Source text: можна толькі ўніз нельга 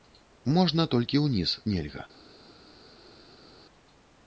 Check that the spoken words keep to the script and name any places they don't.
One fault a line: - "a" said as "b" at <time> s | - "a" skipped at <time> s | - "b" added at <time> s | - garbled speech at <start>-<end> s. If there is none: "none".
none